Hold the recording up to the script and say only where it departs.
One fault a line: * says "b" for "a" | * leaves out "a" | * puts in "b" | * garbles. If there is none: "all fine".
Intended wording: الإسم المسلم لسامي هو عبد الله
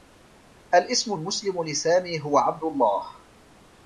all fine